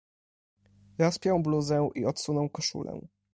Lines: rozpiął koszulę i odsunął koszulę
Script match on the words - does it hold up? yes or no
no